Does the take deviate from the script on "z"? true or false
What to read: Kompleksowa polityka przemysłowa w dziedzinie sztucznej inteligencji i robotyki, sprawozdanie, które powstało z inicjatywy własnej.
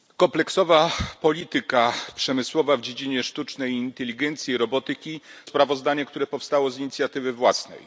false